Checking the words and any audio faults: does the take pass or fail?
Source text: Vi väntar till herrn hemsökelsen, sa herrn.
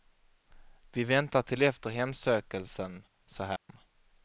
fail